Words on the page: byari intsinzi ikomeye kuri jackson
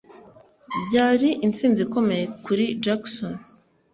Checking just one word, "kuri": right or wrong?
right